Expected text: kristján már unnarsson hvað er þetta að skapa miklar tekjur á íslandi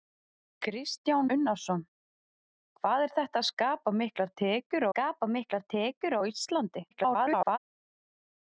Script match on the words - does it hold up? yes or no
no